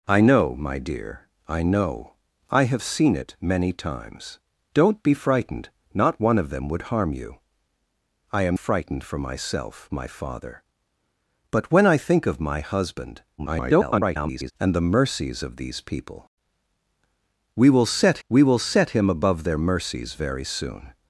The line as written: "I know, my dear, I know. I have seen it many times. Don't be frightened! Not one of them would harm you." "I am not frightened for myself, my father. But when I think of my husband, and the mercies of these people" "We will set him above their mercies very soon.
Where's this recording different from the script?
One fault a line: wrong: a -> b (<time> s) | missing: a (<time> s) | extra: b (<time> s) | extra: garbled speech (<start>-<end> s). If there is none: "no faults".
missing: not (8.6 s)
extra: garbled speech (13.4-14.5 s)
extra: we will set (18.3 s)